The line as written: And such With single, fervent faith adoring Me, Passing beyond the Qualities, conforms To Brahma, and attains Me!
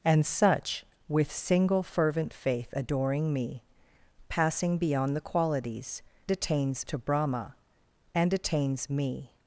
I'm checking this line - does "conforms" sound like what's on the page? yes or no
no